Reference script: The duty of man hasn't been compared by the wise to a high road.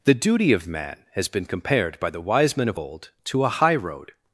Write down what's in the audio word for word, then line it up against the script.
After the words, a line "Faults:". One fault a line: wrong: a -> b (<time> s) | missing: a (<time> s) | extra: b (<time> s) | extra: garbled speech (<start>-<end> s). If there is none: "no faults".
The duty of man has been compared by the wise men of old to a high road.
Faults:
wrong: hasn't -> has (1.1 s)
extra: men of old (2.6 s)